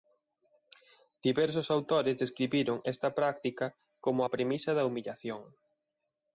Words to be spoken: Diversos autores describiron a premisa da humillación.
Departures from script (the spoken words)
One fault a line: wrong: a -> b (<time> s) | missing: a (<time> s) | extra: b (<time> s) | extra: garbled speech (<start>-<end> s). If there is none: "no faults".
extra: esta práctica como (2.9 s)